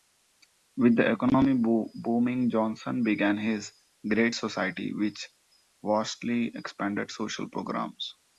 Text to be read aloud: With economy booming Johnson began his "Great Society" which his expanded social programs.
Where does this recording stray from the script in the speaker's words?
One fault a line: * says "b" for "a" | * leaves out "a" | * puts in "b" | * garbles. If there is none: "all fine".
* puts in "the"
* says "vastly" for "his"